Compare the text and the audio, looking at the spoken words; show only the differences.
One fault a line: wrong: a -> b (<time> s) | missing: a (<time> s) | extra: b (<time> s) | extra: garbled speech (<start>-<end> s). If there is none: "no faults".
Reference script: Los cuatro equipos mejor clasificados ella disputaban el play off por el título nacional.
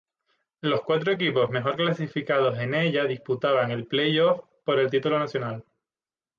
extra: en (2.6 s)